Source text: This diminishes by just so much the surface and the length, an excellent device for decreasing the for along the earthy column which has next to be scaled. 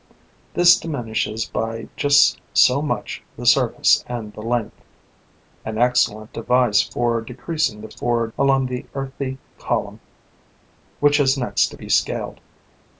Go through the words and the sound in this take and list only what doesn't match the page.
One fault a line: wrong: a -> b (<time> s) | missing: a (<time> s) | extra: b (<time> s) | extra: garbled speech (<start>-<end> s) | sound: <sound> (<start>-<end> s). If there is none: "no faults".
no faults